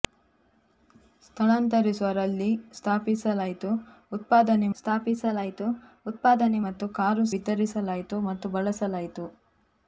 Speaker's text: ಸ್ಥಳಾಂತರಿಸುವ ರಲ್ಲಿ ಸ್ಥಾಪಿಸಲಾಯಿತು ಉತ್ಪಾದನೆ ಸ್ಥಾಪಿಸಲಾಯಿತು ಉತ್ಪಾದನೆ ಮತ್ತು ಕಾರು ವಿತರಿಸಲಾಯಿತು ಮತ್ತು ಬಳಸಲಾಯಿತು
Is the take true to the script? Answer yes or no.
yes